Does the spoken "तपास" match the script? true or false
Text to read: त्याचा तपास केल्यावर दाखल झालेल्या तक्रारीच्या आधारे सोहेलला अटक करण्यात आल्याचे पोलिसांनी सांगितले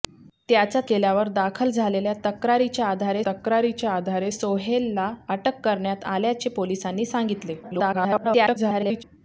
false